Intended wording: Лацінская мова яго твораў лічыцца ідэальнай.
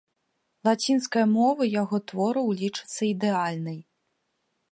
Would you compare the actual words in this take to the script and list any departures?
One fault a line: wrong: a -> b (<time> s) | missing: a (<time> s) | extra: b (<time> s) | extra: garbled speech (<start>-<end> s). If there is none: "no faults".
no faults